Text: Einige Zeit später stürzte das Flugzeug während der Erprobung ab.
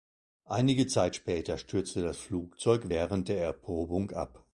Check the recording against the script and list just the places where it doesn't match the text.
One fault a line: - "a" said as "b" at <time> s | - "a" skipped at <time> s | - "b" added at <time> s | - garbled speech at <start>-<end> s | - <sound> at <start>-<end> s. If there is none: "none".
none